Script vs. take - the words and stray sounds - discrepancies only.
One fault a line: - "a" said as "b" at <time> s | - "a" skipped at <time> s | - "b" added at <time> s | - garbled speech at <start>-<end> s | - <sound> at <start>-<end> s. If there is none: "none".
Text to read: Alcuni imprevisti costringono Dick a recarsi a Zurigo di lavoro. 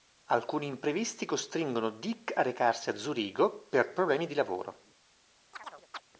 - "per problemi" added at 3.7 s
- chirp at 5.5-6.0 s